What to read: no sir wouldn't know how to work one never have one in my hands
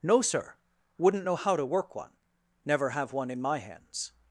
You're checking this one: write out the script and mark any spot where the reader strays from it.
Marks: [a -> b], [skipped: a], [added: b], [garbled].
no sir wouldn't know how to work one never have one in my hands